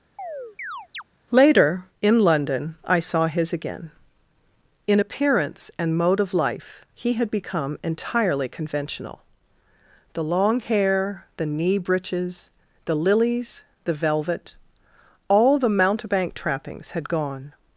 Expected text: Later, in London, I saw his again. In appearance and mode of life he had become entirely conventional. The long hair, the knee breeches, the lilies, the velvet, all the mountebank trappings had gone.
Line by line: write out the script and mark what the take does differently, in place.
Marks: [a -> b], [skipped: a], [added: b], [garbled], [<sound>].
[chirp] Later, in London, I saw his again. In appearance and mode of life he had become entirely conventional. The long hair, the knee breeches, the lilies, the velvet, all the mountebank trappings had gone.